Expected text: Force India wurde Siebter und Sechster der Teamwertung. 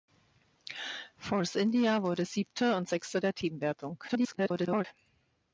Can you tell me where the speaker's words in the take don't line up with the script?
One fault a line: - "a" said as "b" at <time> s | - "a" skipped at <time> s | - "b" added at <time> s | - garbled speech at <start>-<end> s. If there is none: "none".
- garbled speech at 4.1-4.8 s